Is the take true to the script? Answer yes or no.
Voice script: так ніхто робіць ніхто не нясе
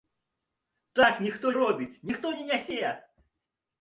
yes